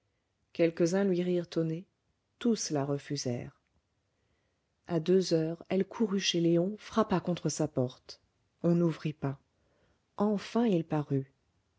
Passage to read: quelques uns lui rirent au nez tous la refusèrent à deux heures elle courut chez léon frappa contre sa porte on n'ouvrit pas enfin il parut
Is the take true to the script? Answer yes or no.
yes